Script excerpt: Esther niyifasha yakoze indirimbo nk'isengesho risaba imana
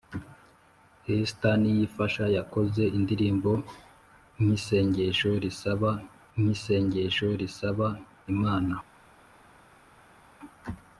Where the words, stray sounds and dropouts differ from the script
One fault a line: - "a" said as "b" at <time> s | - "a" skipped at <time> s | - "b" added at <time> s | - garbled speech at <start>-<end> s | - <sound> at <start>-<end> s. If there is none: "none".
- "nk'isengesho risaba" added at 6.4 s